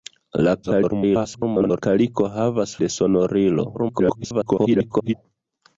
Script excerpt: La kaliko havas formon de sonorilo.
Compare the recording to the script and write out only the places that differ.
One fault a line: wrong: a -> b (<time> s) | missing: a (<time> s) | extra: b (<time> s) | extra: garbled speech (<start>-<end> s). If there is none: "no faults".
extra: garbled speech (0.6-1.8 s)
missing: formon (2.8 s)
extra: garbled speech (3.7-5.1 s)